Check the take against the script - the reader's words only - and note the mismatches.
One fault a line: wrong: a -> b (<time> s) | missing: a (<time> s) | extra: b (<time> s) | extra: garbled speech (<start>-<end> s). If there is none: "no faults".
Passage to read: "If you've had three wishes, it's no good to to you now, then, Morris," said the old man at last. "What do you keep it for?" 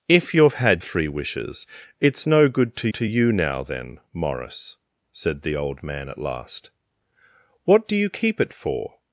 no faults